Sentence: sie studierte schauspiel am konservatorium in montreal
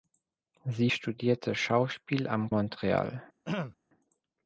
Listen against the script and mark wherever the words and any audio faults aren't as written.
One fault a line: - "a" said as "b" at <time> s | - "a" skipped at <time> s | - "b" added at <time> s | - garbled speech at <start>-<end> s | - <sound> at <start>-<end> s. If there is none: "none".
- "konservatorium in" skipped at 2.5 s
- throat clearing at 3.4-3.8 s